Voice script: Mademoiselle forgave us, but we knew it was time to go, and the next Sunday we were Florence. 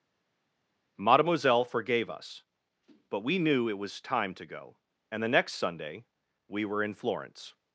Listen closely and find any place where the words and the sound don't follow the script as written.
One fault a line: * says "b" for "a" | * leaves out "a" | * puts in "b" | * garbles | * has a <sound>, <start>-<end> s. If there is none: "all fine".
* puts in "in"